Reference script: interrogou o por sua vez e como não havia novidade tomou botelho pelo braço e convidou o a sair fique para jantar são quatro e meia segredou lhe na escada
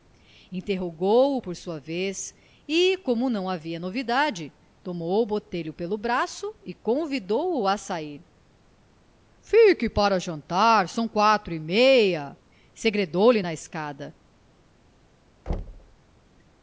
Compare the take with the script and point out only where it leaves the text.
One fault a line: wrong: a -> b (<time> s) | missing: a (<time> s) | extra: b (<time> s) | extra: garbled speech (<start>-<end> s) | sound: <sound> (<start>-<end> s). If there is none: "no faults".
sound: thud (15.5-16.0 s)